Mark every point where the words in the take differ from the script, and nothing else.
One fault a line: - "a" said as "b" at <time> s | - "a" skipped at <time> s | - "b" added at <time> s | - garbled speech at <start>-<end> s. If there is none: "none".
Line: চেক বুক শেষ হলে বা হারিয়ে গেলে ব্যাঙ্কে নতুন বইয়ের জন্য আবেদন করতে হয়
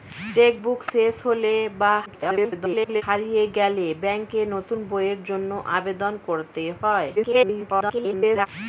- garbled speech at 2.1-3.0 s
- garbled speech at 7.2-8.5 s